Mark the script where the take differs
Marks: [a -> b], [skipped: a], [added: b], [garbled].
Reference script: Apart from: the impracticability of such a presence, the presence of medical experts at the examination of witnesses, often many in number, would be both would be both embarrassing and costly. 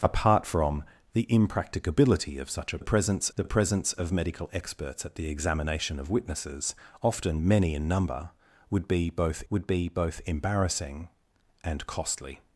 Apart from: the impracticability of such a presence, the presence of medical experts at the examination of witnesses, often many in number, would be both would be both embarrassing and costly.